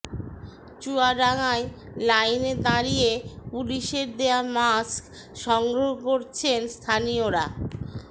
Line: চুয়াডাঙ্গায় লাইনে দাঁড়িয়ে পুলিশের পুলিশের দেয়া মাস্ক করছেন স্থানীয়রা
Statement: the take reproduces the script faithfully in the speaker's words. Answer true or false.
false